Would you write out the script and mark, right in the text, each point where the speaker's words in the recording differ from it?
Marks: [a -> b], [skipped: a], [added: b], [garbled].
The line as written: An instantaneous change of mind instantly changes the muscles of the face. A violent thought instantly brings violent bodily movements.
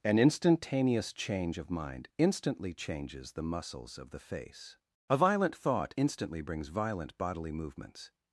An instantaneous change of mind instantly changes the muscles of the face. A violent thought instantly brings violent bodily movements.